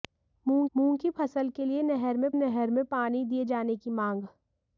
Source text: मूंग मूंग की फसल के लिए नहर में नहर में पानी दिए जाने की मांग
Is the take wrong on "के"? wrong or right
right